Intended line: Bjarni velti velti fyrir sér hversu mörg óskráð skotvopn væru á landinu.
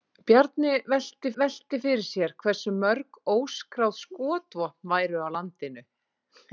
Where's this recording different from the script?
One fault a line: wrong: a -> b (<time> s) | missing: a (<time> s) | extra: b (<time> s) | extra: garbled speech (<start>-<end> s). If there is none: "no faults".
no faults